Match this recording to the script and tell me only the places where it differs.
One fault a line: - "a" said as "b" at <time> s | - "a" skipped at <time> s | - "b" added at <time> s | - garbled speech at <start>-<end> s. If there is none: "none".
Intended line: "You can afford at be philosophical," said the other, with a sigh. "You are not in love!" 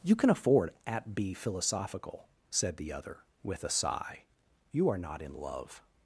none